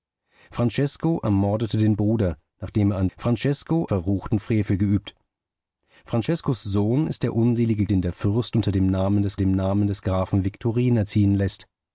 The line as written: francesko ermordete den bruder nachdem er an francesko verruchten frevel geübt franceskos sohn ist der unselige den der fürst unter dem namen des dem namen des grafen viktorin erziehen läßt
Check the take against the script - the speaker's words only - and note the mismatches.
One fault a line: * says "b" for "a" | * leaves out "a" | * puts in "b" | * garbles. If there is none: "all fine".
all fine